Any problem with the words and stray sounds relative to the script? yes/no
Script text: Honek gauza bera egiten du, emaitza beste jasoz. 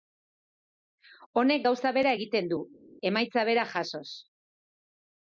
yes